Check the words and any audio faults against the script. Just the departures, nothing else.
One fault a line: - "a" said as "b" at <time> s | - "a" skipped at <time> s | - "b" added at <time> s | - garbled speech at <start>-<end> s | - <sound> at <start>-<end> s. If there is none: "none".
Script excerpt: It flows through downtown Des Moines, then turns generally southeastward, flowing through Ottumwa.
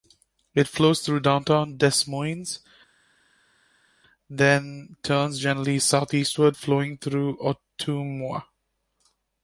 none